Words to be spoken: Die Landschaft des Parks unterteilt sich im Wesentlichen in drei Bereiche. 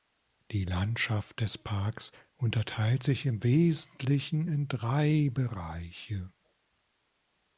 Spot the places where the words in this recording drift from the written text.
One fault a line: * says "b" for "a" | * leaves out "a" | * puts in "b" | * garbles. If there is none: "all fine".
all fine